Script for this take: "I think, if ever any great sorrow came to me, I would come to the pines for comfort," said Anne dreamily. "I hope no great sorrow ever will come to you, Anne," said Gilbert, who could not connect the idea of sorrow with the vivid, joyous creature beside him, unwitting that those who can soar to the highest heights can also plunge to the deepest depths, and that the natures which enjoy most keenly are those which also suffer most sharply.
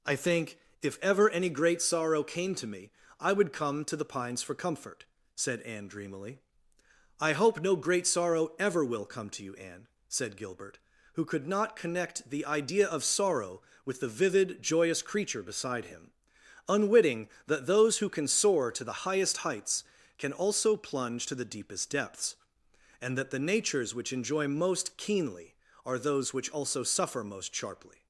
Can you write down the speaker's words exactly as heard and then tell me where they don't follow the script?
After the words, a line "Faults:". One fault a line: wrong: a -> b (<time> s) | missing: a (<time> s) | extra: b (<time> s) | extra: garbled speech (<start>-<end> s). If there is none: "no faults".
"I think, if ever any great sorrow came to me, I would come to the pines for comfort," said Anne dreamily. "I hope no great sorrow ever will come to you, Anne," said Gilbert, who could not connect the idea of sorrow with the vivid, joyous creature beside him, unwitting that those who can soar to the highest heights can also plunge to the deepest depths, and that the natures which enjoy most keenly are those which also suffer most sharply.
Faults:
no faults